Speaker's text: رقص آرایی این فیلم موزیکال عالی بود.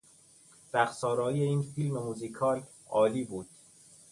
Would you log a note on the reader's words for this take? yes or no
no